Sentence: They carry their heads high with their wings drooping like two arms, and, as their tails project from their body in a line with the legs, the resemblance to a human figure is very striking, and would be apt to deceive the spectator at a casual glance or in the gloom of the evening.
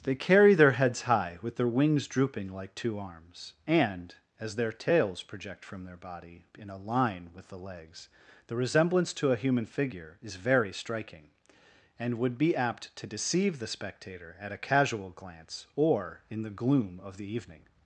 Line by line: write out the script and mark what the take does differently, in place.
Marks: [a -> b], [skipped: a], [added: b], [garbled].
They carry their heads high with their wings drooping like two arms, and, as their tails project from their body in a line with the legs, the resemblance to a human figure is very striking, and would be apt to deceive the spectator at a casual glance or in the gloom of the evening.